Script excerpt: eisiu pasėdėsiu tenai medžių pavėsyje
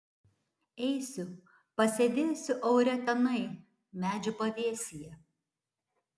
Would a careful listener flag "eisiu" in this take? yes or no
no